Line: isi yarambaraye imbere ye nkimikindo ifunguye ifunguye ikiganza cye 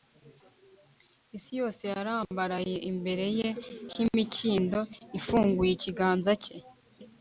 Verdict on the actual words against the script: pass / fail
fail